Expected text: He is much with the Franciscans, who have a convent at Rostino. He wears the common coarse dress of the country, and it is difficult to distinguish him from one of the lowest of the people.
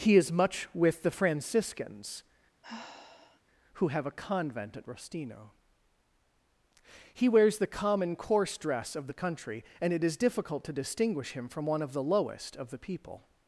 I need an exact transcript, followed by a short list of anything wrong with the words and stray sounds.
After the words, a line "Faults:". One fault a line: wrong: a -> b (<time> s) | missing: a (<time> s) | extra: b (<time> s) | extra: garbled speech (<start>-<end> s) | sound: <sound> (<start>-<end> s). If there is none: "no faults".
He is much with the Franciscans, who have a convent at Rostino. He wears the common coarse dress of the country, and it is difficult to distinguish him from one of the lowest of the people.
Faults:
sound: sigh (2.6-3.4 s)